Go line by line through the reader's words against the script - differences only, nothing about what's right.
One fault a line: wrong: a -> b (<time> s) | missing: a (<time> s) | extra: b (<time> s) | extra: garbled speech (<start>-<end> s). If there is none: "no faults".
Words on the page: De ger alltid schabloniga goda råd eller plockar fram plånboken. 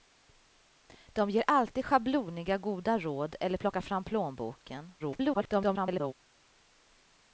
extra: garbled speech (5.0-6.1 s)